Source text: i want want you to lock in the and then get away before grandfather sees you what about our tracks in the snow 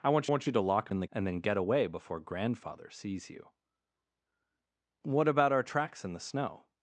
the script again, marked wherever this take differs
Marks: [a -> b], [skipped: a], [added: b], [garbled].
i want want you to lock in the and then get away before grandfather sees you what about our tracks in the snow